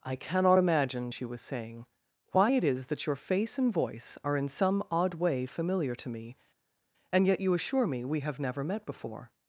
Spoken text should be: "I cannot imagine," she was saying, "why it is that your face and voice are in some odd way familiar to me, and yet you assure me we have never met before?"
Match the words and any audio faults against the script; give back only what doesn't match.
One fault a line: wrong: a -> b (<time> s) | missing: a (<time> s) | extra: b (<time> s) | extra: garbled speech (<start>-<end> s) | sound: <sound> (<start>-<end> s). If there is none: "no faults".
no faults